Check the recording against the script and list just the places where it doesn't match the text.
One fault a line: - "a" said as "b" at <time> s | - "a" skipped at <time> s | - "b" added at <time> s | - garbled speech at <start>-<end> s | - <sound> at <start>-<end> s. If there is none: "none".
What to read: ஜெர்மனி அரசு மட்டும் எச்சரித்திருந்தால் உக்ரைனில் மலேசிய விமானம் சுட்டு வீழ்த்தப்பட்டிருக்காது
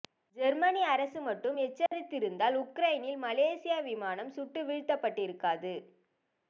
- dropout at 1.9-1.9 s